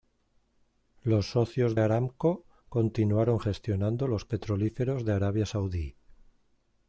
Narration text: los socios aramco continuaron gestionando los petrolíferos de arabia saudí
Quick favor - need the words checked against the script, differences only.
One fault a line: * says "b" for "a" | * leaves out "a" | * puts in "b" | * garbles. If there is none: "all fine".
all fine